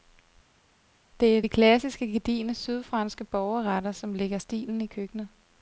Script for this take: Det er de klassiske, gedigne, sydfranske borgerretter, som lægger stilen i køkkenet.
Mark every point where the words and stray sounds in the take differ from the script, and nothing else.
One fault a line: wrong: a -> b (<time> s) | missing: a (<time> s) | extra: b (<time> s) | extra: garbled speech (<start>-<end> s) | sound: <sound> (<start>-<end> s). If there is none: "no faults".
no faults